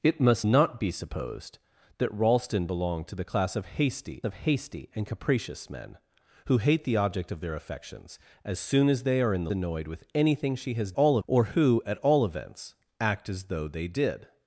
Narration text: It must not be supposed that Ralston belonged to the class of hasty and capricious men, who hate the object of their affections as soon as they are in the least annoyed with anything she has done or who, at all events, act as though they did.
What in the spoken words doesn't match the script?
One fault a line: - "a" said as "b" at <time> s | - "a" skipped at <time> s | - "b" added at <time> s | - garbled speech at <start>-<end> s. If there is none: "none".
- "of hasty" added at 4.2 s
- "least" skipped at 9.5 s
- "done" said as "all" at 10.9 s